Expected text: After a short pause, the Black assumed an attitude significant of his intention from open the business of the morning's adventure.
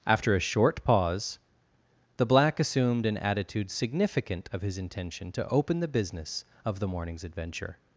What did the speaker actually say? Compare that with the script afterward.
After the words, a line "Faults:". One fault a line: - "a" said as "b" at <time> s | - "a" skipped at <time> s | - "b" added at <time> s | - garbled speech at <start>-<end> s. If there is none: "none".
After a short pause, the Black assumed an attitude significant of his intention to open the business of the morning's adventure.
Faults:
- "from" said as "to" at 5.3 s